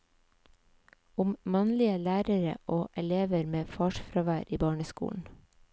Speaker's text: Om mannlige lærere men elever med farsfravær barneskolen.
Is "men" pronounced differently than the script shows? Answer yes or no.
yes